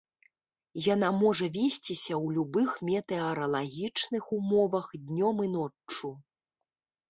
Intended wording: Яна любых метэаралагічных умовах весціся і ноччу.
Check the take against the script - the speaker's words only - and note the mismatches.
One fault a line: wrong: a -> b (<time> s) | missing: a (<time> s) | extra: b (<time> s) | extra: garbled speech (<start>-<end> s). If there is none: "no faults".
extra: можа весціся ў (1.2 s)
wrong: весціся -> днём (5.0 s)